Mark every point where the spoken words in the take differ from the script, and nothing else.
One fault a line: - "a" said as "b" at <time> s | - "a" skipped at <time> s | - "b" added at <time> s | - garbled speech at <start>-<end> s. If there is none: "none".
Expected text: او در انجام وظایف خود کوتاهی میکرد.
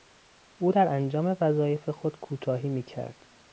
none